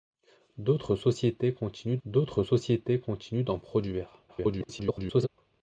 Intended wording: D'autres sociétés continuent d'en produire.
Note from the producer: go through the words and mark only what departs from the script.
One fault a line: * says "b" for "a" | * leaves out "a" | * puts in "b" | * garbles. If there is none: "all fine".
* puts in "d'autres sociétés continuent"
* garbles